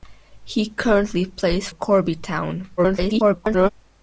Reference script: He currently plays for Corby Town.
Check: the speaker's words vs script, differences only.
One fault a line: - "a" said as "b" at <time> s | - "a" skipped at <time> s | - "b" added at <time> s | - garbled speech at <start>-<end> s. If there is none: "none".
- "for" skipped at 1.7 s
- garbled speech at 2.8-3.7 s